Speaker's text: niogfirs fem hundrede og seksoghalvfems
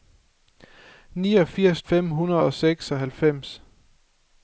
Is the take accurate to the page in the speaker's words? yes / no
yes